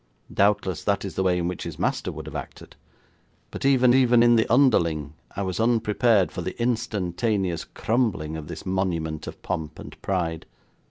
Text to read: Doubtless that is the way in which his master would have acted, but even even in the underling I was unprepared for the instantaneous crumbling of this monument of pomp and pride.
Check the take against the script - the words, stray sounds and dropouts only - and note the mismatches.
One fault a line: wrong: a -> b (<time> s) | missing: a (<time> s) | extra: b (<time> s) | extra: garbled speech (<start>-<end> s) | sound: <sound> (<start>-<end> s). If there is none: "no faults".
no faults